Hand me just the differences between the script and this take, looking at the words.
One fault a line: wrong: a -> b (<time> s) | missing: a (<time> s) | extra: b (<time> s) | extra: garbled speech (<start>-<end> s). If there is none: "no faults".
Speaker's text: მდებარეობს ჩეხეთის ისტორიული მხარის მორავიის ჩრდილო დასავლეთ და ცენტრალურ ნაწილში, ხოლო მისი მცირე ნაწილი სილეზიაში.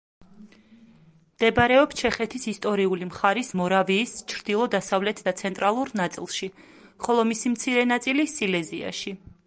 no faults